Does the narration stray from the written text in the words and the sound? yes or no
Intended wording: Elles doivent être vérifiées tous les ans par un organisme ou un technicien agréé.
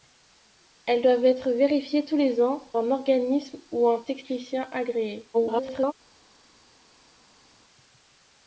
yes